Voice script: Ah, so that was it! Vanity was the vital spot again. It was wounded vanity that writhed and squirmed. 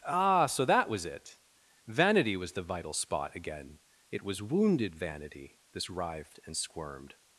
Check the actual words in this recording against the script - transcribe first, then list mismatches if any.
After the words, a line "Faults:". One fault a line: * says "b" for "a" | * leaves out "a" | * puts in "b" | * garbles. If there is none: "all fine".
Ah, so that was it! Vanity was the vital spot again. It was wounded vanity this writhed and squirmed.
Faults:
* says "this" for "that"